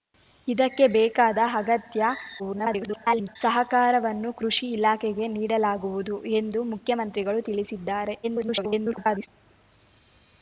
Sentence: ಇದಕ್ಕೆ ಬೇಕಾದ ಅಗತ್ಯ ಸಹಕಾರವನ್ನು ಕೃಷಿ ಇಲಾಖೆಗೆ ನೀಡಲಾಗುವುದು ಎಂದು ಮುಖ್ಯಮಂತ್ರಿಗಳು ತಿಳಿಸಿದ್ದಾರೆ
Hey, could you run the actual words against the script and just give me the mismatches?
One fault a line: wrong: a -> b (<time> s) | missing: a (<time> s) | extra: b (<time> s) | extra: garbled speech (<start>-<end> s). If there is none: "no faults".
extra: garbled speech (2.4-3.4 s)
extra: garbled speech (8.2-9.3 s)